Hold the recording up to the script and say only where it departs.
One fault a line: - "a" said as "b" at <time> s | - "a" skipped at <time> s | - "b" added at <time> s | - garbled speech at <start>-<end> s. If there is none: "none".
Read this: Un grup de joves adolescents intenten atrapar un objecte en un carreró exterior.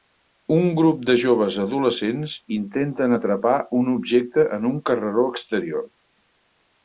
none